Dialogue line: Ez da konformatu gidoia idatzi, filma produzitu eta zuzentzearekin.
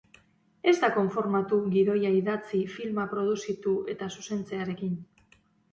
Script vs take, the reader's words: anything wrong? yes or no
no